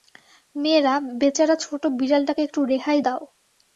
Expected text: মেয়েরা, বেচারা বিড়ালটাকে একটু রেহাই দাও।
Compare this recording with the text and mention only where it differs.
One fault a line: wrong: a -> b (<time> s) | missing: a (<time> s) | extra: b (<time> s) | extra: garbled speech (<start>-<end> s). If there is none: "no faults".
extra: ছোট (1.6 s)